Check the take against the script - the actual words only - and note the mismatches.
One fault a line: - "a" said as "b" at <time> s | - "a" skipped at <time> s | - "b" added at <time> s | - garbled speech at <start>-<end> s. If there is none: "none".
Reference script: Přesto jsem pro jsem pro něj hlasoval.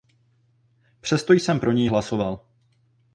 - "jsem pro" skipped at 1.7 s